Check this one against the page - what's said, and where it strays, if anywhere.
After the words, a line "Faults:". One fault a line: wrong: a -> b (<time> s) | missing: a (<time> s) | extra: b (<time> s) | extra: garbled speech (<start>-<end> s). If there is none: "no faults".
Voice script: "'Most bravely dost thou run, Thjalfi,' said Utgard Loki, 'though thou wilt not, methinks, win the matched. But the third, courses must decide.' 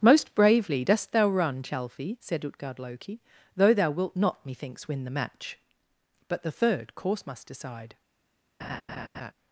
"'Most bravely dost thou run, Thjalfi,' said Utgard Loki, 'though thou wilt not, methinks, win the match. But the third, course must decide.'
Faults:
wrong: matched -> match (5.1 s)
wrong: courses -> course (7.0 s)